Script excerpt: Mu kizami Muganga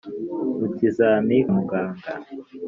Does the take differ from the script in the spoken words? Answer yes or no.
no